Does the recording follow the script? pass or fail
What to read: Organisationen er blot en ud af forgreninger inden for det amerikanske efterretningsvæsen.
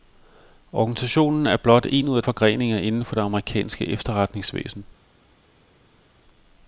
pass